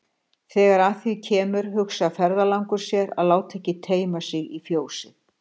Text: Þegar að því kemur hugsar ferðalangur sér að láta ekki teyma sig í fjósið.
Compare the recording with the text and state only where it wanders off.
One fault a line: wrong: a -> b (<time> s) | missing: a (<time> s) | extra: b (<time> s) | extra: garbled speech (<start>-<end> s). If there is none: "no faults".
no faults